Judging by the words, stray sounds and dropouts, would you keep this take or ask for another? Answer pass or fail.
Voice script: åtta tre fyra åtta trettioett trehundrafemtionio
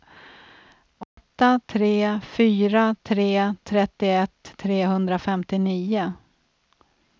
fail